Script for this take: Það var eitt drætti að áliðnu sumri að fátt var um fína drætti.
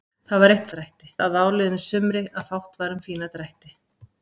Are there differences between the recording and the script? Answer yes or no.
no